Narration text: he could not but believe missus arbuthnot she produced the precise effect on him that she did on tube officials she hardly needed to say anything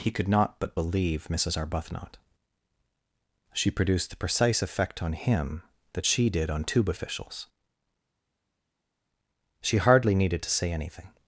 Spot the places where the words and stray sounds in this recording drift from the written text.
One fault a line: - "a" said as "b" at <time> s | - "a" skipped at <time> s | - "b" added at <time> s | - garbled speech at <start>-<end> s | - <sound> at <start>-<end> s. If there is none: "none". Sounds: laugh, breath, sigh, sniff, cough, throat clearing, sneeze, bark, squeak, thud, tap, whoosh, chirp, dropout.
none